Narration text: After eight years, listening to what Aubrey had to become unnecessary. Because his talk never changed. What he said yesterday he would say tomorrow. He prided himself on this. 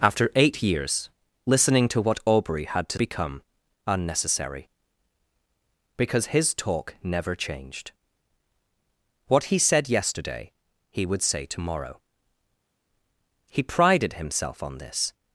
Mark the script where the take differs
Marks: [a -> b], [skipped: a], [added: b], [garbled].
After eight years, listening to what Aubrey had to become unnecessary. Because his talk never changed. What he said yesterday he would say tomorrow. He prided himself on this.